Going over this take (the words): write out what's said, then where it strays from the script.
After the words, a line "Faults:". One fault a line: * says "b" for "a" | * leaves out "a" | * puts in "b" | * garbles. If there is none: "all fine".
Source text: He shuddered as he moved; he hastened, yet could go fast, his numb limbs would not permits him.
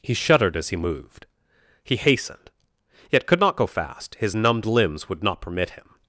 He shuddered as he moved; he hastened, yet could not go fast, his numbed limbs would not permit him.
Faults:
* puts in "not"
* says "numbed" for "numb"
* says "permit" for "permits"